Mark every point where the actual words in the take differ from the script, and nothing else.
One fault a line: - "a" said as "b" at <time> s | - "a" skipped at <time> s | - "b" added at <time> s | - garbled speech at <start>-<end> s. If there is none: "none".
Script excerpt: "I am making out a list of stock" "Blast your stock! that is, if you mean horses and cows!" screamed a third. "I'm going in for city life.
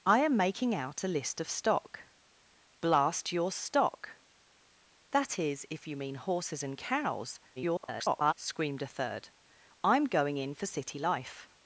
- garbled speech at 7.6-8.3 s